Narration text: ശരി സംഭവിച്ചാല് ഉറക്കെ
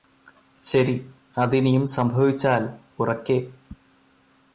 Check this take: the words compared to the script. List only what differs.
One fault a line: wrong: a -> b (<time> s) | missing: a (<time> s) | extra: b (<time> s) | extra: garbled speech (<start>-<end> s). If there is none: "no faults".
extra: അതിനിയും (1.4 s)